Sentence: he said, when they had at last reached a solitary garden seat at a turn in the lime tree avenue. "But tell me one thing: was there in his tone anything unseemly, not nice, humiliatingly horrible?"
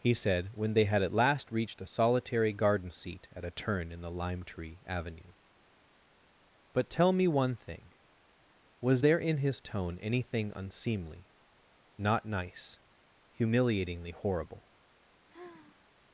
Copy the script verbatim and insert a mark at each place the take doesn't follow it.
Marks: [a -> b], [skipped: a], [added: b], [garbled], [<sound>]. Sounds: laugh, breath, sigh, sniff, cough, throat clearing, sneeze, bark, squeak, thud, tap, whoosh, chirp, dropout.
he said, when they had at last reached a solitary garden seat at a turn in the lime tree avenue. "But tell me one thing: was there in his tone anything unseemly, not nice, humiliatingly horrible?" [sigh]